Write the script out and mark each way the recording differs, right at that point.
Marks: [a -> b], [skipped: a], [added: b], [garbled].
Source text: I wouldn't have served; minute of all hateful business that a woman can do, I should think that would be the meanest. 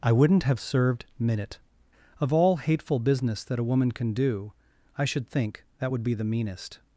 I wouldn't have served; minute of all hateful business that a woman can do, I should think that would be the meanest.